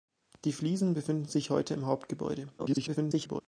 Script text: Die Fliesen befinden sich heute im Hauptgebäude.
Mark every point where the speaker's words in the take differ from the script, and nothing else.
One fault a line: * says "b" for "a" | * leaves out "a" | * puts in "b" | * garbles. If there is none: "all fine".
* garbles